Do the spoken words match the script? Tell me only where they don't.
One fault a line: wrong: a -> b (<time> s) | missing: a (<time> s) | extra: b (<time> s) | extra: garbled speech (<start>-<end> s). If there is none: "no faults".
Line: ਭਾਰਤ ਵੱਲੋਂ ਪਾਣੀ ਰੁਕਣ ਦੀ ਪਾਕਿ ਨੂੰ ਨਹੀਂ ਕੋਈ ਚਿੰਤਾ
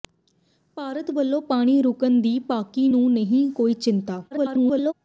extra: garbled speech (4.3-4.9 s)